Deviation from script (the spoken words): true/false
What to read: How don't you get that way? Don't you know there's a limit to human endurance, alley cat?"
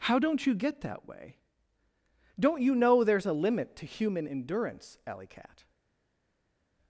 false